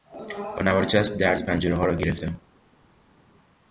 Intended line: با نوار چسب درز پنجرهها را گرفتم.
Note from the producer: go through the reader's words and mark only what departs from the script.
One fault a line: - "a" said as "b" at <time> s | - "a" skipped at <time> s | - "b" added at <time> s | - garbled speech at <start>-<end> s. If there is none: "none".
none